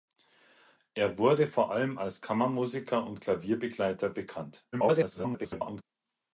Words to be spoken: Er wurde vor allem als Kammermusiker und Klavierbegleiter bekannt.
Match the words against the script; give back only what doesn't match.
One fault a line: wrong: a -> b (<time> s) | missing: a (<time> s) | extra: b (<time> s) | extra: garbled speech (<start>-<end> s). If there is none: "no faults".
extra: garbled speech (4.7-5.8 s)